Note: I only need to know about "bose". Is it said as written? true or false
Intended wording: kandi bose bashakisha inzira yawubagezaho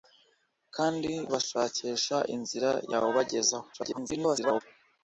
false